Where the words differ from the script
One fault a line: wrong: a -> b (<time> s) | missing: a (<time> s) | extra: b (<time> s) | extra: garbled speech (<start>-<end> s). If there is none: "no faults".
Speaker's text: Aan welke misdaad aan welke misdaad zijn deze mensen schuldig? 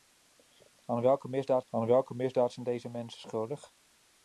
no faults